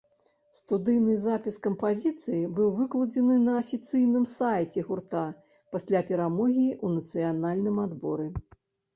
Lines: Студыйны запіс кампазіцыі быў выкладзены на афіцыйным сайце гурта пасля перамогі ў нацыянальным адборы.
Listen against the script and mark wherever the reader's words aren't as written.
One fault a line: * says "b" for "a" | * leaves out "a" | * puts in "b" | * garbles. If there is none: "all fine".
all fine